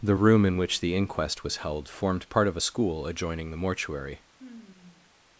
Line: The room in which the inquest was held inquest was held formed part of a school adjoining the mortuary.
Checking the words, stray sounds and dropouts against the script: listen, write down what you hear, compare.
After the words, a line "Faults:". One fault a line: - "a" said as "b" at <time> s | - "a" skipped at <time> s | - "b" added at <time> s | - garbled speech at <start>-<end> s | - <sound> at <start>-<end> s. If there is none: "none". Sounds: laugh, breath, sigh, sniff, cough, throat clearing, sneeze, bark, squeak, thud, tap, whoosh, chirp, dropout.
The room in which the inquest was held formed part of a school adjoining the mortuary.
Faults:
- "inquest was held" skipped at 1.9 s
- sigh at 4.4-5.1 s